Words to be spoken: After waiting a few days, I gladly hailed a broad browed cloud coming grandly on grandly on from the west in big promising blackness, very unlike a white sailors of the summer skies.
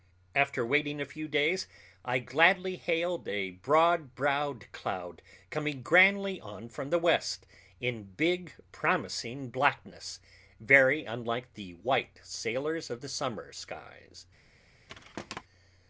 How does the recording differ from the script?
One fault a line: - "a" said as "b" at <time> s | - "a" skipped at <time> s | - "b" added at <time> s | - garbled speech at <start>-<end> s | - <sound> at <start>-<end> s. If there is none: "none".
- "grandly on" skipped at 6.7 s
- "a" said as "the" at 11.5 s
- thud at 14.9-15.4 s